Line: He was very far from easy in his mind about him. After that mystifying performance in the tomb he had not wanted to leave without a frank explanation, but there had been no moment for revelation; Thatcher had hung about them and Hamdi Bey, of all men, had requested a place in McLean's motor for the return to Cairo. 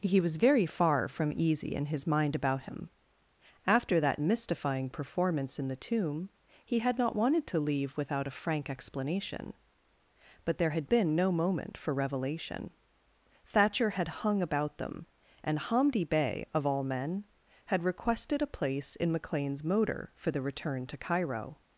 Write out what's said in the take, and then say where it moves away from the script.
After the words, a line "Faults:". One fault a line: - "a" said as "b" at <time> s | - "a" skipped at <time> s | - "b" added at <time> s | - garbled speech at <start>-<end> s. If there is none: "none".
He was very far from easy in his mind about him. After that mystifying performance in the tomb he had not wanted to leave without a frank explanation, but there had been no moment for revelation; Thatcher had hung about them and Hamdi Bey, of all men, had requested a place in McLean's motor for the return to Cairo.
Faults:
none